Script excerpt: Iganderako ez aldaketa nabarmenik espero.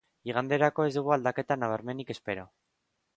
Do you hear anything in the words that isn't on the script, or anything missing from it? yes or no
yes